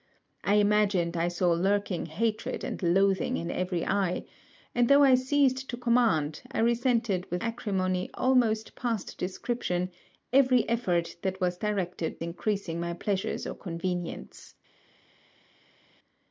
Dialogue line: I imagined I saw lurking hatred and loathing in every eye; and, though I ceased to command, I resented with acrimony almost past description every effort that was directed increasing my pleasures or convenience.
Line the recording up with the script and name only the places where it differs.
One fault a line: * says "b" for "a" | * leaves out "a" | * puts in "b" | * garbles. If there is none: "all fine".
all fine